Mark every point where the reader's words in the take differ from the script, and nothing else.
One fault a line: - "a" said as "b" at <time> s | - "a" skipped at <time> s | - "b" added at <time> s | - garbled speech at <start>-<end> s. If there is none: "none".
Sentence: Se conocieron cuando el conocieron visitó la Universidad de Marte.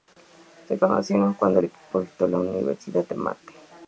- "conocieron" said as "equipo" at 1.6 s